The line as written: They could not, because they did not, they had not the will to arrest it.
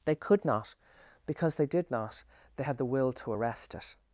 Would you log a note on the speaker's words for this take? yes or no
yes